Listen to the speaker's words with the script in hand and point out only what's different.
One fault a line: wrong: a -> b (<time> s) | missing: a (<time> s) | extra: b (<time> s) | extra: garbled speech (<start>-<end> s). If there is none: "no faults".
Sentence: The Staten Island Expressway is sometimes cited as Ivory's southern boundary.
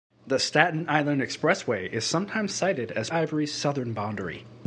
no faults